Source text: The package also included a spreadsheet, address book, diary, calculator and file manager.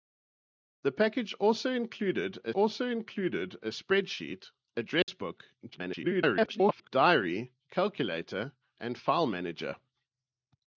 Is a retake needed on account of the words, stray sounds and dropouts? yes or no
yes